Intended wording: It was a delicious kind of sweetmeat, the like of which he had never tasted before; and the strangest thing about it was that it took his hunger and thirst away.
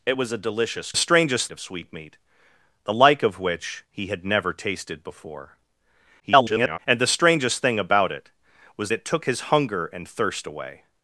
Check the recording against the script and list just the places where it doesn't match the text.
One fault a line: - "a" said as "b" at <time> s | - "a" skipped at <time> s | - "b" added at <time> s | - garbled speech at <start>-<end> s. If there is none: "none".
- "kind" said as "strangest" at 0.9 s
- garbled speech at 6.2-6.8 s
- "that" skipped at 8.9 s